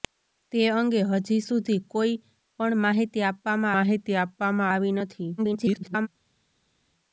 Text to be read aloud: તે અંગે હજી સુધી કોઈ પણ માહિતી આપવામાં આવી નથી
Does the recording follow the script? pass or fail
fail